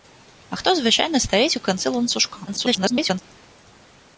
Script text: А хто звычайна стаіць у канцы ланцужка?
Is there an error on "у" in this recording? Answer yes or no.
no